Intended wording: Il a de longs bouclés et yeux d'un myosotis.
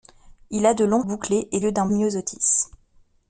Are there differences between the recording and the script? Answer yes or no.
no